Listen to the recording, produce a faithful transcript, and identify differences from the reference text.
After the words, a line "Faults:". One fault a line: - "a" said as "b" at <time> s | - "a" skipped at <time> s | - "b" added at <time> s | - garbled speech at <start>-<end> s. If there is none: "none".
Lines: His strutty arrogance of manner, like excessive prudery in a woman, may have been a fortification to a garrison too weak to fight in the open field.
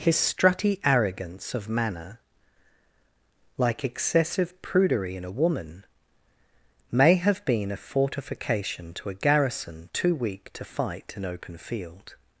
His strutty arrogance of manner, like excessive prudery in a woman, may have been a fortification to a garrison too weak to fight in open field.
Faults:
- "the" skipped at 11.2 s